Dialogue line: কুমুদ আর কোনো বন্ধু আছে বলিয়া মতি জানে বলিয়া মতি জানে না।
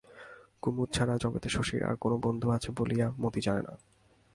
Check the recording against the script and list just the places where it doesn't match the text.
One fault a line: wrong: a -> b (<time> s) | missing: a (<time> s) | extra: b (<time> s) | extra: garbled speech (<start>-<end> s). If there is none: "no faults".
extra: ছাড়া জগতে শশীর (0.9 s)
missing: বলিয়া মতি জানে (3.6 s)